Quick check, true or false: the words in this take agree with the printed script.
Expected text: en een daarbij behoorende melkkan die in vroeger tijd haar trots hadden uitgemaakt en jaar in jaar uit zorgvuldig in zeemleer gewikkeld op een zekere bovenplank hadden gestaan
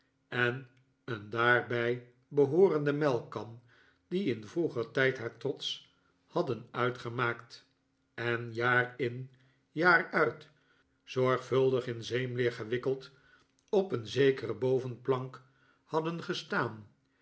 true